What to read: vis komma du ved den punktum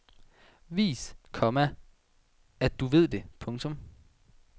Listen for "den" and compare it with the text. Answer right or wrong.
wrong